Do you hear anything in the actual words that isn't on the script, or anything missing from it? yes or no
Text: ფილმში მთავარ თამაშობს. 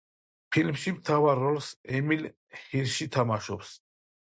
yes